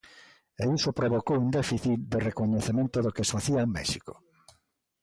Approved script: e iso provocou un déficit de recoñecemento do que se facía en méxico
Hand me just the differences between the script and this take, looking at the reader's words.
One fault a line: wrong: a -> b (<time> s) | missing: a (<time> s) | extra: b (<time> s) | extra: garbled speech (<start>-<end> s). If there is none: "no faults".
missing: se (3.3 s)